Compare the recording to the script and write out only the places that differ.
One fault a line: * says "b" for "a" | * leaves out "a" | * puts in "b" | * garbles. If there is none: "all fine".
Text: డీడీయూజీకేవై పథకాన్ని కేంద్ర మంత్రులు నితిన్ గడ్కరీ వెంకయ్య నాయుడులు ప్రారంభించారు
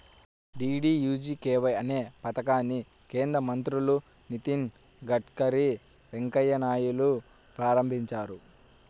* puts in "అనే"